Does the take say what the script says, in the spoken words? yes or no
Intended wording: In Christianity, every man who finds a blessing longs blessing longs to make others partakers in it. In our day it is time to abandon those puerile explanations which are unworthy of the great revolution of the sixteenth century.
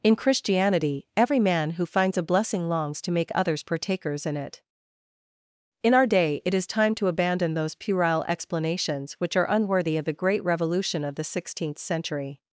no